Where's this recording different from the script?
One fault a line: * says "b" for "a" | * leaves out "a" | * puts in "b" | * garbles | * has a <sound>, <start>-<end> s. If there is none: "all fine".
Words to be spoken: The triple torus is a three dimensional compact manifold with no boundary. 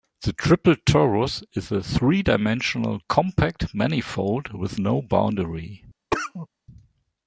* has a cough, 6.1-6.5 s